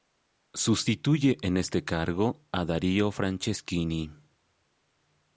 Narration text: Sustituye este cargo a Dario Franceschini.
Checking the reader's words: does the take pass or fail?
fail